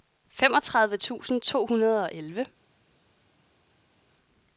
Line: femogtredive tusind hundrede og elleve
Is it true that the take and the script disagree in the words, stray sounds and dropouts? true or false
true